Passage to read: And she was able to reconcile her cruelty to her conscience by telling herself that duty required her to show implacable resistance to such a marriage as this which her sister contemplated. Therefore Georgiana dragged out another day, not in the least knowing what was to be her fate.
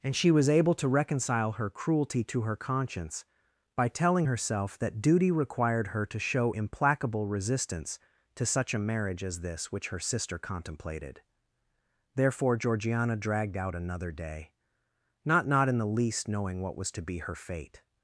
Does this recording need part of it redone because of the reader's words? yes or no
yes